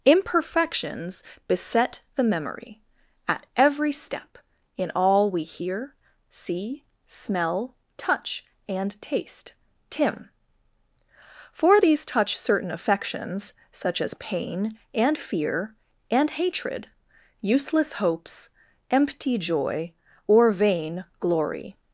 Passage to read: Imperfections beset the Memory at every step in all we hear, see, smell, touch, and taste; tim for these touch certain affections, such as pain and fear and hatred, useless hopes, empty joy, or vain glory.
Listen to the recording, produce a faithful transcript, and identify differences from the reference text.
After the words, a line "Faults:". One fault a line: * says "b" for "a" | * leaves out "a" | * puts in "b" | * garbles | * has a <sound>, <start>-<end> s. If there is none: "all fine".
Imperfections beset the Memory at every step in all we hear, see, smell, touch, and taste; tim for these touch certain affections, such as pain and fear and hatred, useless hopes, empty joy, or vain glory.
Faults:
all fine